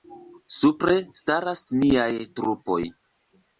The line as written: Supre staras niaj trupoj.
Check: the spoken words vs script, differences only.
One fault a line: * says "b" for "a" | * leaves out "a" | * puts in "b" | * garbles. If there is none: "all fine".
all fine